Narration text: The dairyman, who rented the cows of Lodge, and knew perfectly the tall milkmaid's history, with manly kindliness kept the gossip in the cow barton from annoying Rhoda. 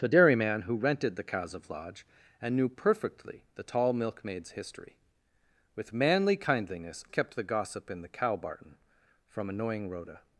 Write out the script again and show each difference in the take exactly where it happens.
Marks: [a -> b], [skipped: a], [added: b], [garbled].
The dairyman, who rented the cows of Lodge, and knew perfectly the tall milkmaid's history, with manly kindliness kept the gossip in the cow barton from annoying Rhoda.